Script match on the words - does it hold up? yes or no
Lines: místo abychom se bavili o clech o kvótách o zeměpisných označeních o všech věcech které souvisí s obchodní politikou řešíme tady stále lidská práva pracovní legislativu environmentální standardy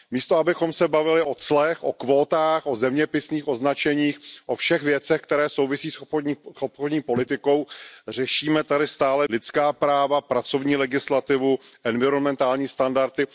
yes